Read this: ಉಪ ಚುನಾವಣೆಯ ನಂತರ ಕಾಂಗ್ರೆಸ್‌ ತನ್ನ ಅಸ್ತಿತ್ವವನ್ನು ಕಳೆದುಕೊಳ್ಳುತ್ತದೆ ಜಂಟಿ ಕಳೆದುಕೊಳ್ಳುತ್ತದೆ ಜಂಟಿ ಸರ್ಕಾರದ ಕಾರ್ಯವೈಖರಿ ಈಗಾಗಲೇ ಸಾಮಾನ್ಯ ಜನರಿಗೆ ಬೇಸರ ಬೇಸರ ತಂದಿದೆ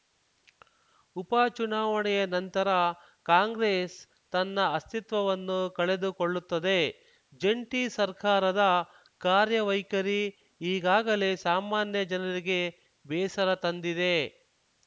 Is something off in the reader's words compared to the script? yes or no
yes